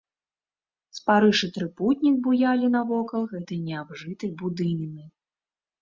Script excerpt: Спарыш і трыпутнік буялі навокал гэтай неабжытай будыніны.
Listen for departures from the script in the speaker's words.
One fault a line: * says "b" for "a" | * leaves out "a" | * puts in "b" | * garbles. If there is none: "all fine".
all fine